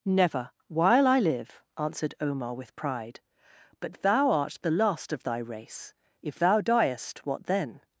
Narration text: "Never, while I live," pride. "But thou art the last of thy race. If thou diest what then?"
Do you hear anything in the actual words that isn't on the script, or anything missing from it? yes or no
yes